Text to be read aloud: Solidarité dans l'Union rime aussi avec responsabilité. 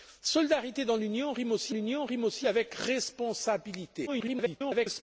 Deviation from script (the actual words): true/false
true